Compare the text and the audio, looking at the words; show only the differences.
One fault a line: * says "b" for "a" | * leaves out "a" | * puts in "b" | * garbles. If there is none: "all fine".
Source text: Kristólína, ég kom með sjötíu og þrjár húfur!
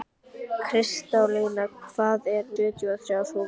* leaves out "með"